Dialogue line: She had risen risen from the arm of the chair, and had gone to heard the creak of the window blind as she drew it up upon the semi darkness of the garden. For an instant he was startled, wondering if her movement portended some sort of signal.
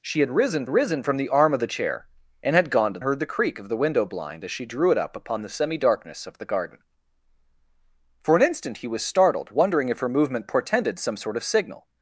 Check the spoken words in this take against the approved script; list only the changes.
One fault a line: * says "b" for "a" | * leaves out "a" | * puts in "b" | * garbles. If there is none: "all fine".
all fine